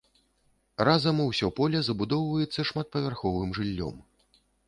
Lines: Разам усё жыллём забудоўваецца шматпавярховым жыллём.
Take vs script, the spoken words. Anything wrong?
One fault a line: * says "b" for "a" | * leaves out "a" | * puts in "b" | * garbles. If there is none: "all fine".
* says "поле" for "жыллём"